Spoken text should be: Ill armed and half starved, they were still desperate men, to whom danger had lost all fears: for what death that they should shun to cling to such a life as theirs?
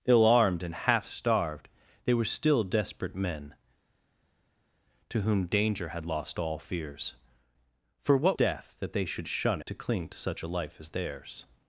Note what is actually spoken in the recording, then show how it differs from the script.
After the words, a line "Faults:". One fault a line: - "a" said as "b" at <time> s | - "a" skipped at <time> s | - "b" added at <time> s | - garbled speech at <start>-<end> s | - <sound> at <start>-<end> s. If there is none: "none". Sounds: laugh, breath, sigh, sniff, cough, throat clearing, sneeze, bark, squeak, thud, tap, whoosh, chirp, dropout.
Ill armed and half starved, they were still desperate men, to whom danger had lost all fears: for what death that they should shun to cling to such a life as theirs?
Faults:
none